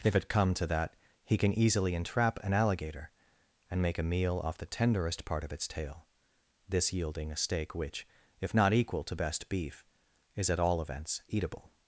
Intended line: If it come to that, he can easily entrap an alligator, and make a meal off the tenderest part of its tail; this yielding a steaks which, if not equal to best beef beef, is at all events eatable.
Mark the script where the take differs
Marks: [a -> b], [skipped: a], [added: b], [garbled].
If it come to that, he can easily entrap an alligator, and make a meal off the tenderest part of its tail; this yielding a [steaks -> steak] which, if not equal to best beef [skipped: beef,] is at all events eatable.